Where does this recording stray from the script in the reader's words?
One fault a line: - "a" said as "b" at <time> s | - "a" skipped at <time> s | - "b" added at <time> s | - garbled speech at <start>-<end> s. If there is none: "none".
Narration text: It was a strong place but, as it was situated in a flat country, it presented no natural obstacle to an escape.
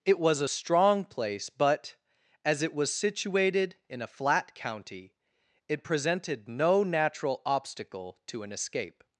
- "country" said as "county" at 4.5 s